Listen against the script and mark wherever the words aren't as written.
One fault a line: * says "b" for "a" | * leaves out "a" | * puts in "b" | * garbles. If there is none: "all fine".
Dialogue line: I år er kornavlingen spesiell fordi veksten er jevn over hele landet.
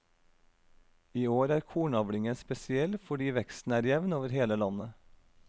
all fine